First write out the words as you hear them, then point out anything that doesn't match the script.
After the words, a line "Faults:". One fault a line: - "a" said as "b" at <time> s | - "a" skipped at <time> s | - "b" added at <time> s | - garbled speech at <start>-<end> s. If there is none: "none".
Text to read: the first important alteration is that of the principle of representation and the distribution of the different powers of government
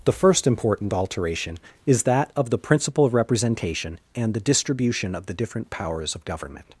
the first important alteration is that of the principle of representation and the distribution of the different powers of government
Faults:
none